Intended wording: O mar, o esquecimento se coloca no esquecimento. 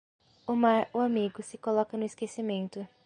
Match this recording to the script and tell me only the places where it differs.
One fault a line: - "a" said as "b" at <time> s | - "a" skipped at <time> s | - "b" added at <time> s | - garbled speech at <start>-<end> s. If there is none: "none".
- "esquecimento" said as "amigo" at 1.0 s